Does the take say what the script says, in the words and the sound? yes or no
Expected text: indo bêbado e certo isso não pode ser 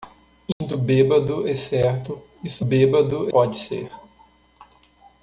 no